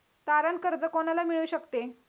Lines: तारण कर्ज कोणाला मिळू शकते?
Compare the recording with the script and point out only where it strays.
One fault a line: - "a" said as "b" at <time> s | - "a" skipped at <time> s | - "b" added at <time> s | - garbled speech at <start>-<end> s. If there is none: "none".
none